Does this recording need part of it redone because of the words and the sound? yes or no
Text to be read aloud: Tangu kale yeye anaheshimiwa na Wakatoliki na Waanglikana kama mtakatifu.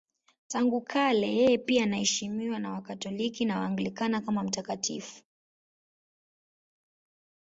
yes